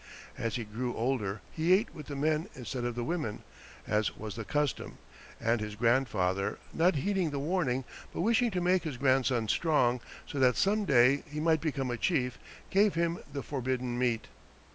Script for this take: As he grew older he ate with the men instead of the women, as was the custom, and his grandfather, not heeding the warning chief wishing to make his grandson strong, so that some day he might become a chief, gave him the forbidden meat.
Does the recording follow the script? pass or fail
fail